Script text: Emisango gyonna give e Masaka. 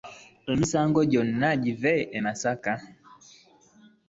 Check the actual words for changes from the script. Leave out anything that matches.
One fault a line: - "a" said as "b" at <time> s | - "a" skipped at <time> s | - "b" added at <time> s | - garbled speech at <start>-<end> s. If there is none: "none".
none